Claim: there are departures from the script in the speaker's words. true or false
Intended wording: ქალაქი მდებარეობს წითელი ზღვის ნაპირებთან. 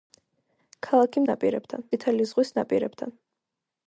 true